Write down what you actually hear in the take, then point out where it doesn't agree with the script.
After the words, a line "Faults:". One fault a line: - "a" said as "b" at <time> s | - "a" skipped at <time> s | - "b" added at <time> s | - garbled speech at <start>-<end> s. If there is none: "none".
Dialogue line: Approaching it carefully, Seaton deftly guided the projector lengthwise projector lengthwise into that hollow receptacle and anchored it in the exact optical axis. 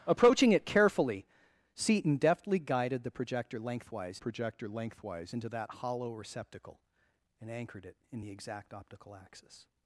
Approaching it carefully, Seaton deftly guided the projector lengthwise projector lengthwise into that hollow receptacle and anchored it in the exact optical axis.
Faults:
none